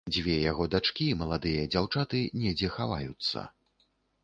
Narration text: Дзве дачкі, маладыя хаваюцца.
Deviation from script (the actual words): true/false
true